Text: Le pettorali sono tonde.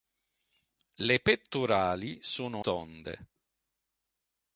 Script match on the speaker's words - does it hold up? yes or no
yes